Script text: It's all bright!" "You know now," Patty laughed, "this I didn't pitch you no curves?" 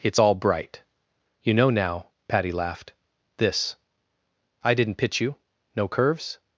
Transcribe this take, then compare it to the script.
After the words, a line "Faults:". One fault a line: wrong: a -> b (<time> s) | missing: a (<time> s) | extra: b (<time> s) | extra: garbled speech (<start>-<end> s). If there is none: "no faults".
It's all bright!" "You know now," Patty laughed, "this I didn't pitch you no curves?"
Faults:
no faults